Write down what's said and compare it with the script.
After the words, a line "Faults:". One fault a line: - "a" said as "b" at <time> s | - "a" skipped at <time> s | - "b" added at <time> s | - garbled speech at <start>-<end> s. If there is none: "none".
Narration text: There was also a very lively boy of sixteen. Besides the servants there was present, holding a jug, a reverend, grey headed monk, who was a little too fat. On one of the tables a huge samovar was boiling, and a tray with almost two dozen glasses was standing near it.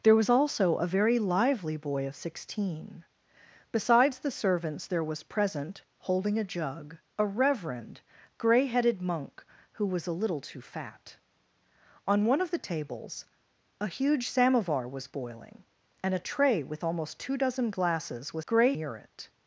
There was also a very lively boy of sixteen. Besides the servants there was present, holding a jug, a reverend, grey headed monk, who was a little too fat. On one of the tables a huge samovar was boiling, and a tray with almost two dozen glasses was grey near it.
Faults:
- "standing" said as "grey" at 18.5 s